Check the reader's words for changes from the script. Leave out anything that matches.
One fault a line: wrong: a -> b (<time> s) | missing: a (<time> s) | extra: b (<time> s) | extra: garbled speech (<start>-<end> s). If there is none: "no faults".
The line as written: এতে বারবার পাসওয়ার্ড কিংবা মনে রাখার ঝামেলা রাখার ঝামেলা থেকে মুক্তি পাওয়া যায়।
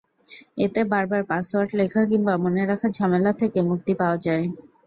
extra: লেখা (1.8 s)
missing: রাখার ঝামেলা (3.3 s)